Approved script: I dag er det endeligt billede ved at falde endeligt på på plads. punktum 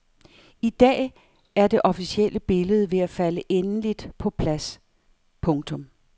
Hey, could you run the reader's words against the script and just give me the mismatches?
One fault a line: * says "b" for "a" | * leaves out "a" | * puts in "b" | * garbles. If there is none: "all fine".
* says "officielle" for "endeligt"
* leaves out "på"